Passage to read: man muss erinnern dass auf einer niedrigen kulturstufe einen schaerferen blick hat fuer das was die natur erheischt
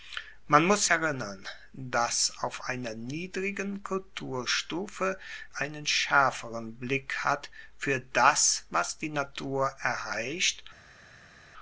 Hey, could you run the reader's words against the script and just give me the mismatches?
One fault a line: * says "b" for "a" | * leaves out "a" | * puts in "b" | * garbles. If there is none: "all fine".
all fine